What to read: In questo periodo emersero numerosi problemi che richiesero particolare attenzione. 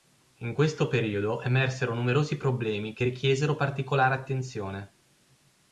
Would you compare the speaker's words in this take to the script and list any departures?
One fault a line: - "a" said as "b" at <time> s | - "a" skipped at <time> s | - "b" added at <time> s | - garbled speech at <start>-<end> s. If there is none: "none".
none